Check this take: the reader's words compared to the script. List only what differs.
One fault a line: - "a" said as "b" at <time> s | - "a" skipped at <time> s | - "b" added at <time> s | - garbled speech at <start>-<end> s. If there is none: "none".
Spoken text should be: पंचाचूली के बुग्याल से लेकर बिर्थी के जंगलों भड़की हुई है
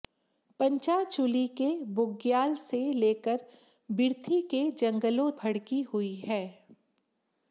none